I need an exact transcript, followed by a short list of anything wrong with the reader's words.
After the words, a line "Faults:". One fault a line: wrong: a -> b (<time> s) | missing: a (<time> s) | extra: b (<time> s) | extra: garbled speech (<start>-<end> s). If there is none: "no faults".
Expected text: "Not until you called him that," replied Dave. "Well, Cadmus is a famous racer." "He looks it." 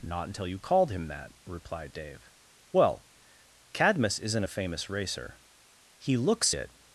"Not until you called him that," replied Dave. "Well, Cadmus isn't a famous racer." "He looks it."
Faults:
wrong: is -> isn't (4.2 s)